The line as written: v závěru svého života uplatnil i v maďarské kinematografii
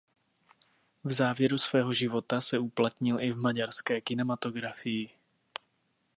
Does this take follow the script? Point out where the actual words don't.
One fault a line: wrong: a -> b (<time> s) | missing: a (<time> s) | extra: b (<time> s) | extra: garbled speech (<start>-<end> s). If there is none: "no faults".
extra: se (2.4 s)